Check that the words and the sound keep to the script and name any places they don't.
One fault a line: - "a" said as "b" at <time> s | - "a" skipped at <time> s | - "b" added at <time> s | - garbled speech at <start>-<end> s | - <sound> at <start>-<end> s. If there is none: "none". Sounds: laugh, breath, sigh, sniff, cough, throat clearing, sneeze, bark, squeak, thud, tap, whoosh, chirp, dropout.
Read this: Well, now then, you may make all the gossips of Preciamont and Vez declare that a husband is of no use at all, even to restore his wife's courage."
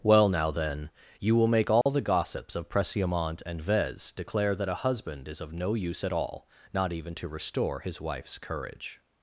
- "may" said as "will" at 1.3 s
- dropout at 1.8-1.9 s
- "not" added at 6.7 s